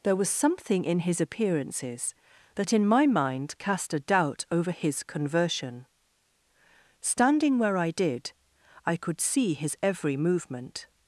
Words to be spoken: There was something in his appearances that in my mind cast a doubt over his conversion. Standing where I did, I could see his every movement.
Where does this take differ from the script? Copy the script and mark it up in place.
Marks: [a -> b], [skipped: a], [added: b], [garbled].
There was something in his appearances that in my mind cast a doubt over his conversion. Standing where I did, I could see his every movement.